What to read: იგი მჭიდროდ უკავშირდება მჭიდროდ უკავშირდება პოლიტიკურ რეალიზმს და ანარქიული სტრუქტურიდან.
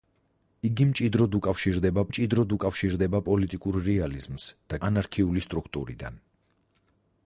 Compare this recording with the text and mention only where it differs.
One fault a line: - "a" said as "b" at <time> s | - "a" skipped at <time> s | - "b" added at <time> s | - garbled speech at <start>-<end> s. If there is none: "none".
none